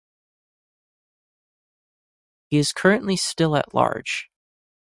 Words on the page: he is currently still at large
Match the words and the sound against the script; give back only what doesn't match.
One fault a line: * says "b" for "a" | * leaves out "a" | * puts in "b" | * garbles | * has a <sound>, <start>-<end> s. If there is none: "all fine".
all fine